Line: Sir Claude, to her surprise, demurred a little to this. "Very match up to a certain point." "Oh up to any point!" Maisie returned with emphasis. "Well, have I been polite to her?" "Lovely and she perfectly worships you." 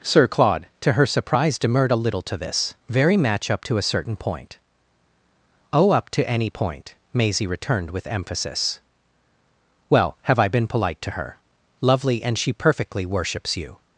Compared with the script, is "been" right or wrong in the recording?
right